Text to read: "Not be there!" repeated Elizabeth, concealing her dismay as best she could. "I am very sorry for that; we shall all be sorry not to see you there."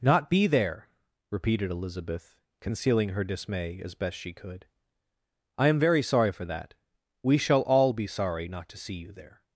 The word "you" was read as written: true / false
true